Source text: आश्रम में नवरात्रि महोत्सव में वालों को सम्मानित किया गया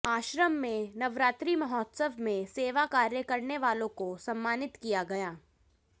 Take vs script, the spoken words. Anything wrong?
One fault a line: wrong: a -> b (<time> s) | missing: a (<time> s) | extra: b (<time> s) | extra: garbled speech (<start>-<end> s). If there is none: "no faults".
extra: सेवा कार्य करने (2.5 s)